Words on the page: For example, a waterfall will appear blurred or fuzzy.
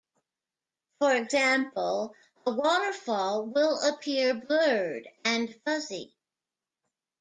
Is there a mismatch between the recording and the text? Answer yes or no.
yes